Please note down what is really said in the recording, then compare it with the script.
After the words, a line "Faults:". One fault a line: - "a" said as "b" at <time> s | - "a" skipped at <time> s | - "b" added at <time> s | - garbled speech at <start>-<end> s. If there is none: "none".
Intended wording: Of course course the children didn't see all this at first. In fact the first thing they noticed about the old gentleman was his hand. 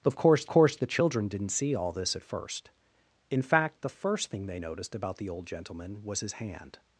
Of course course the children didn't see all this at first. In fact the first thing they noticed about the old gentleman was his hand.
Faults:
none